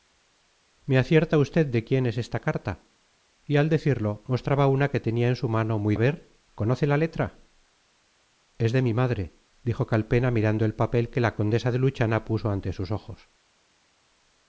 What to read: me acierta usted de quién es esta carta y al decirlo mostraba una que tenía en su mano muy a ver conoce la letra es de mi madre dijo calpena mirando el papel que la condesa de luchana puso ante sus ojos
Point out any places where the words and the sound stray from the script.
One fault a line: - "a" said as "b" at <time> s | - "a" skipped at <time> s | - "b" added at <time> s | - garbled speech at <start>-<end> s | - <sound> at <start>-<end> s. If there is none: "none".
none